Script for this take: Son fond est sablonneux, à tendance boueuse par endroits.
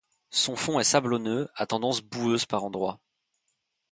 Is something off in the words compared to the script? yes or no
no